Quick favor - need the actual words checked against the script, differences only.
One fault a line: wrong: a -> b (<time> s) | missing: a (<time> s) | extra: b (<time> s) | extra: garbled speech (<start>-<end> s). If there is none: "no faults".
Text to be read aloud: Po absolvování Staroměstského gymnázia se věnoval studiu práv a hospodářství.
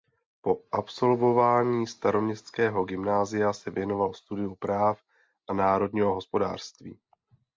extra: národního (5.5 s)